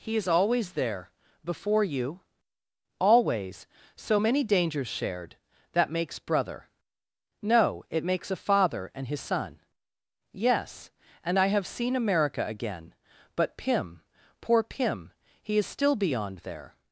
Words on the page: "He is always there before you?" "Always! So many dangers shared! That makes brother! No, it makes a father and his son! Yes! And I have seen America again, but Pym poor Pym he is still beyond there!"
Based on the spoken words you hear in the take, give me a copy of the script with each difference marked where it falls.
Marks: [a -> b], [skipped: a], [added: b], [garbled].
"He is always there before you?" "Always! So many dangers shared! That makes brother! No, it makes a father and his son! Yes! And I have seen America again, but Pym poor Pym he is still beyond there!"